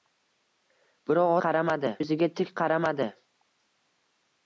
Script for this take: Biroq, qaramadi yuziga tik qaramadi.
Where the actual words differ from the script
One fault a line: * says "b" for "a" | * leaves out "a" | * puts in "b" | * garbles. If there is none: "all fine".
all fine